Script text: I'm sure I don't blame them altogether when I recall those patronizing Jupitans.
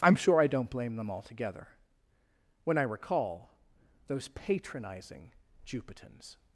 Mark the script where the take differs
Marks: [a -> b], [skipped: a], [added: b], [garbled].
I'm sure I don't blame them altogether when I recall those patronizing Jupitans.